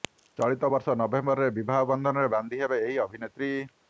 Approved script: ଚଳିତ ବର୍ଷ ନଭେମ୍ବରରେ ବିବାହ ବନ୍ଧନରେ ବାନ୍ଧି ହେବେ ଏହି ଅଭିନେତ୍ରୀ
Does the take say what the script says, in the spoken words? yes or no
yes